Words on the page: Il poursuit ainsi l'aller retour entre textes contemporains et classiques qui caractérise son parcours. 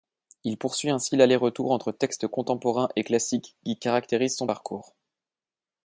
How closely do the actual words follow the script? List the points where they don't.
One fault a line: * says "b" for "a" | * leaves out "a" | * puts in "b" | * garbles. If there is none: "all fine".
all fine